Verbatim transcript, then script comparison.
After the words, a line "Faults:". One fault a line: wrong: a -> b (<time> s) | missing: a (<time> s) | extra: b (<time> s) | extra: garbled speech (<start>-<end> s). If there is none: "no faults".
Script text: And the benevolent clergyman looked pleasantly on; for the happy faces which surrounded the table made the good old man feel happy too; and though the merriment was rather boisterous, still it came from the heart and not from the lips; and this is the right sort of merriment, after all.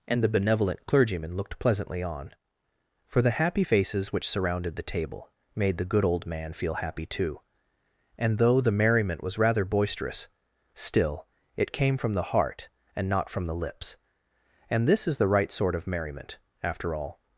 And the benevolent clergyman looked pleasantly on; for the happy faces which surrounded the table made the good old man feel happy too; and though the merriment was rather boisterous, still it came from the heart and not from the lips; and this is the right sort of merriment, after all.
Faults:
no faults